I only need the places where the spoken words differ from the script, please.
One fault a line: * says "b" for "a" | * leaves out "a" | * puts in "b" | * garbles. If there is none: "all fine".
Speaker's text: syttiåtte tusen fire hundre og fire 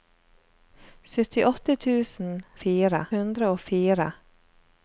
all fine